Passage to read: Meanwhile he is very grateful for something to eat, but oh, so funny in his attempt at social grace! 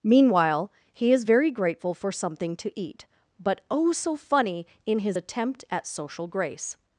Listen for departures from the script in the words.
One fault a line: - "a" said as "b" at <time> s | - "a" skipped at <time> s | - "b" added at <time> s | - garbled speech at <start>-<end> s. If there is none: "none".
none